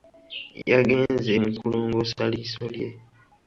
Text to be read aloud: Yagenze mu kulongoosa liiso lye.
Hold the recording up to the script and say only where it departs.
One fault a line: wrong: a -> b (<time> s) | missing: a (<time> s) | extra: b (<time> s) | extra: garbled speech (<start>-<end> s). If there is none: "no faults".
no faults